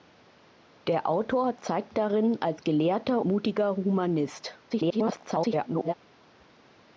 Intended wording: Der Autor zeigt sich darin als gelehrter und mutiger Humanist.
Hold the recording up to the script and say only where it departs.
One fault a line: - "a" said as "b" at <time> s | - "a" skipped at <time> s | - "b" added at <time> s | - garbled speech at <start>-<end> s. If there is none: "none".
- "sich" skipped at 1.9 s
- "und" skipped at 3.2 s
- garbled speech at 4.7-5.9 s